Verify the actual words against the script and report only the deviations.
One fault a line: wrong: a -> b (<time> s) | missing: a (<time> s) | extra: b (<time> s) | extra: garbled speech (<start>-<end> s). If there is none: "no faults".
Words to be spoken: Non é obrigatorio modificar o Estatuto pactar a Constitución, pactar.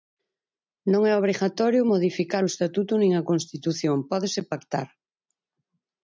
wrong: pactar -> nin (3.0 s)
extra: pódese (4.1 s)